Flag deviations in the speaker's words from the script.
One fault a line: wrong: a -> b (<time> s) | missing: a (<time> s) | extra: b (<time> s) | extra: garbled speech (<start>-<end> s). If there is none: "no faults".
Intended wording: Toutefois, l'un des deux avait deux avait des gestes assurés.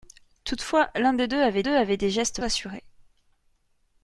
no faults